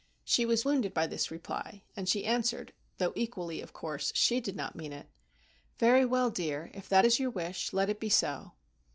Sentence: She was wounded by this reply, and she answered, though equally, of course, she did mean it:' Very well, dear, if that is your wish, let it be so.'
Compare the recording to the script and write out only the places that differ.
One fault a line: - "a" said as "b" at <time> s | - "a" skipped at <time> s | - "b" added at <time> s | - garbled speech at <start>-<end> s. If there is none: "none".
- "not" added at 4.5 s